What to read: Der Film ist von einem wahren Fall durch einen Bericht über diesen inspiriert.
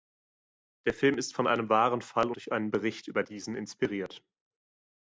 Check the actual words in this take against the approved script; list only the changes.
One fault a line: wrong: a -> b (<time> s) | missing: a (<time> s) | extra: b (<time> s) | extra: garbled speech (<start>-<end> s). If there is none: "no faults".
no faults